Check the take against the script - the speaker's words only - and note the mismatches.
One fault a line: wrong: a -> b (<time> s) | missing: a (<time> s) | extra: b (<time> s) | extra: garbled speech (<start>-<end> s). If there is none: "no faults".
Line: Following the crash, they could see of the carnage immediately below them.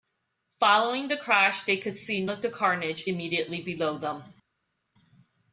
no faults